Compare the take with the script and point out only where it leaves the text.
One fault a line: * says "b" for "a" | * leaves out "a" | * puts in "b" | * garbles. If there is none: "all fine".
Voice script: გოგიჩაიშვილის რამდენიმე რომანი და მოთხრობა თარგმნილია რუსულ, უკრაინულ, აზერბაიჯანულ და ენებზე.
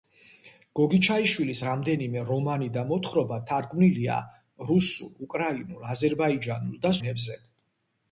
all fine